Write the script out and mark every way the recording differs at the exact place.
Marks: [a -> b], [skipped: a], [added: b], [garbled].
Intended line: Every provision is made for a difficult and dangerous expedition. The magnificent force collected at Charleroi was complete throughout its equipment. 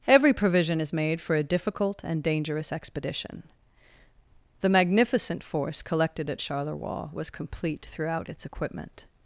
Every provision is made for a difficult and dangerous expedition. The magnificent force collected at Charleroi was complete throughout its equipment.